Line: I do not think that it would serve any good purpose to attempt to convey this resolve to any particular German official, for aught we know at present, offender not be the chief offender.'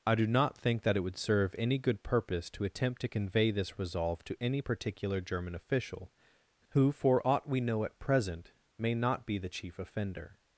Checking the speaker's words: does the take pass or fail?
fail